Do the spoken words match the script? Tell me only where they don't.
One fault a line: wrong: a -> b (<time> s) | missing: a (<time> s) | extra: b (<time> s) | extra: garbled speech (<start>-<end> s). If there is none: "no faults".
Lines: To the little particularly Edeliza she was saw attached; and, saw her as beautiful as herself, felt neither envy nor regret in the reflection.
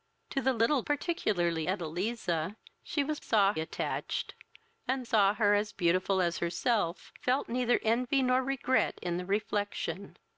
no faults